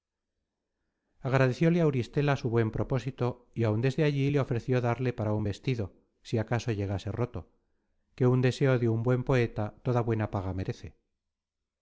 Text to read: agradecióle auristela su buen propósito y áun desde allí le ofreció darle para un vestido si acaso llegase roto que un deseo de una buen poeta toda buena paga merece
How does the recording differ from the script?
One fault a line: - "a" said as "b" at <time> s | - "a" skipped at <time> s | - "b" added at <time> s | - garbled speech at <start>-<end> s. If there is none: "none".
- "una" said as "un" at 8.9 s